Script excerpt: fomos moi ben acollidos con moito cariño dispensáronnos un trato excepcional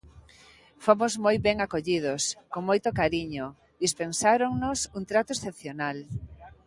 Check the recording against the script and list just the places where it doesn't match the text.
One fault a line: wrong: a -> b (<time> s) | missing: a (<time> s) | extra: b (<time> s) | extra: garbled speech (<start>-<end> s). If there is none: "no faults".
no faults